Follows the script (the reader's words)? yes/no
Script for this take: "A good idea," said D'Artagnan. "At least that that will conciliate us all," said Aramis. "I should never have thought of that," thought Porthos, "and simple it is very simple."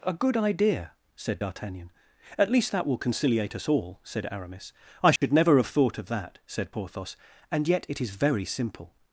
no